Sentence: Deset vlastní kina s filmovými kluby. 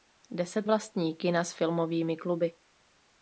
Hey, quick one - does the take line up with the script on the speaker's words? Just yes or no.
yes